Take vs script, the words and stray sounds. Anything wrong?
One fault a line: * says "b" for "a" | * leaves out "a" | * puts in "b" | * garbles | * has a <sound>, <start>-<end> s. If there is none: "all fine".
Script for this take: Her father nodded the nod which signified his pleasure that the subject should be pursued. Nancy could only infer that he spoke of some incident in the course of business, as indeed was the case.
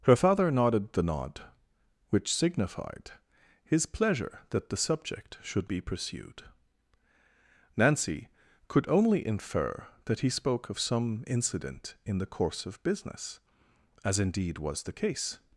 all fine